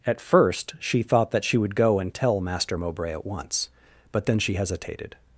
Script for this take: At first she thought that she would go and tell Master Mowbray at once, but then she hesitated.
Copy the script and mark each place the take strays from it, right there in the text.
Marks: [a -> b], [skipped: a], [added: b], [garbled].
At first she thought that she would go and tell Master Mowbray at once, but then she hesitated.